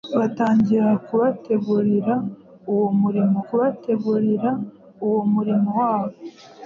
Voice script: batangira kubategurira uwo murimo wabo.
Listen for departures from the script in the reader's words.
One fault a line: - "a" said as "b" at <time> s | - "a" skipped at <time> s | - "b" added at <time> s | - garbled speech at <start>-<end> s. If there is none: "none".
- "kubategurira uwo murimo" added at 3.5 s